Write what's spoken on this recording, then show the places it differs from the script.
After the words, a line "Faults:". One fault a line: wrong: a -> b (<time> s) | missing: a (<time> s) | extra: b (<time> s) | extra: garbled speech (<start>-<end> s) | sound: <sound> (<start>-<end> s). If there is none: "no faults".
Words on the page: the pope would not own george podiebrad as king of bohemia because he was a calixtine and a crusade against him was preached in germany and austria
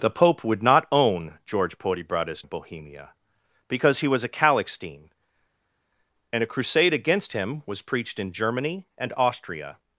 the pope would not own george podiebrad as of bohemia because he was a calixtine and a crusade against him was preached in germany and austria
Faults:
missing: king (2.4 s)